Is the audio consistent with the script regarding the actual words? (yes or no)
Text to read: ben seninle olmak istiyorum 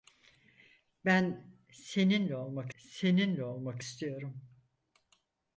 no